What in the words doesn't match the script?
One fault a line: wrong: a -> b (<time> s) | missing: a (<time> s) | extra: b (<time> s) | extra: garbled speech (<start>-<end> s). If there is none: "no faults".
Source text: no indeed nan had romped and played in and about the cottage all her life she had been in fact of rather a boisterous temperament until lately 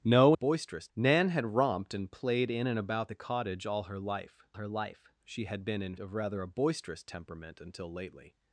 wrong: indeed -> boisterous (0.3 s)
extra: her life (4.5 s)
missing: fact (5.9 s)